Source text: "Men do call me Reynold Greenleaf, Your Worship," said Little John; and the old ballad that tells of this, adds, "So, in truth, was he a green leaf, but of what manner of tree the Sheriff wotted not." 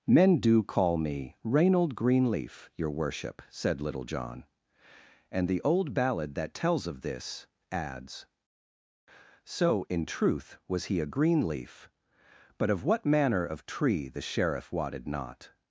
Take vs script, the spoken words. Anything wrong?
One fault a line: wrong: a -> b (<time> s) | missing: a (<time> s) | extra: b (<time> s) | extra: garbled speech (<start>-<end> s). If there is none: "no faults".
no faults